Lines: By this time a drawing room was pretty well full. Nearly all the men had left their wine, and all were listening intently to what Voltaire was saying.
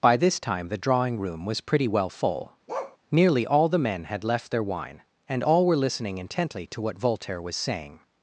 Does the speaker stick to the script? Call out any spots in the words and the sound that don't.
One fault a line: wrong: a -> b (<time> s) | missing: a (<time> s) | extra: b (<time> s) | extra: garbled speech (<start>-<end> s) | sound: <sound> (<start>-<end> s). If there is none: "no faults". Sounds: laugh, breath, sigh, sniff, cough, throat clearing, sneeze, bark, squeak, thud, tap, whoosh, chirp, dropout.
wrong: a -> the (0.7 s)
sound: bark (2.7-3.0 s)